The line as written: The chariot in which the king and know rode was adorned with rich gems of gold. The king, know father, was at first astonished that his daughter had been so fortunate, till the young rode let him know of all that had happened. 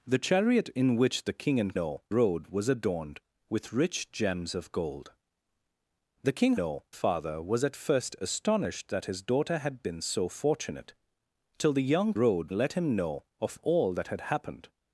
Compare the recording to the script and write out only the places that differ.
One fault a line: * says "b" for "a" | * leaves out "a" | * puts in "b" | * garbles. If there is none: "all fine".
all fine